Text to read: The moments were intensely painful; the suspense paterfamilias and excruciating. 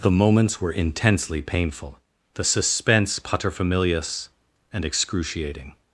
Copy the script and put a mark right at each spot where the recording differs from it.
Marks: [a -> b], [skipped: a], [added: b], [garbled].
The moments were intensely painful; the suspense paterfamilias and excruciating.